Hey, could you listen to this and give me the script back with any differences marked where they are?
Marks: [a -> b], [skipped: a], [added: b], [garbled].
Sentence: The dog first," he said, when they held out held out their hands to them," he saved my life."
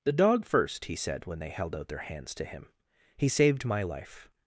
The dog first," he said, when they held out [skipped: held out] their hands to [them," -> him] he saved my life."